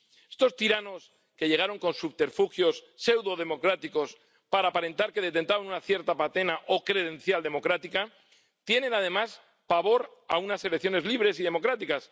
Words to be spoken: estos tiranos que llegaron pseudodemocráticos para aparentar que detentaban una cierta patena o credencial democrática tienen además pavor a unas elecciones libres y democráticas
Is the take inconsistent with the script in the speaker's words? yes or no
yes